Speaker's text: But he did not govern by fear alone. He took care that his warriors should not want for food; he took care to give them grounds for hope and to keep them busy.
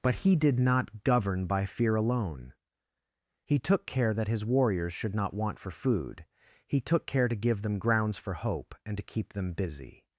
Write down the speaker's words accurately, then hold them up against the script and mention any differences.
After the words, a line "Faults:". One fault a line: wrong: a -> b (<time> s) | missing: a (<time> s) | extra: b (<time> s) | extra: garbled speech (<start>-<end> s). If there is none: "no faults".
But he did not govern by fear alone. He took care that his warriors should not want for food; he took care to give them grounds for hope and to keep them busy.
Faults:
no faults